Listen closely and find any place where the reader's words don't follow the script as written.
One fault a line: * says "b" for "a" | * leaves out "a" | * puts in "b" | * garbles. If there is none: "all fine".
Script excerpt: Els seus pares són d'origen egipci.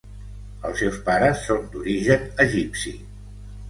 all fine